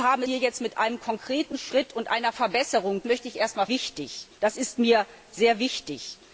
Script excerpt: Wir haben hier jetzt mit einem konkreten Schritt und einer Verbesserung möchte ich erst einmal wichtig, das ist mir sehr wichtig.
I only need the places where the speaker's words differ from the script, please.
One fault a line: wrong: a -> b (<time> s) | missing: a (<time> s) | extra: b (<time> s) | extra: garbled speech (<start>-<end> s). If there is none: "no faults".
no faults